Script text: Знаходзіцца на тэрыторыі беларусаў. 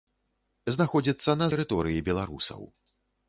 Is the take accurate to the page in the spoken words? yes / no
yes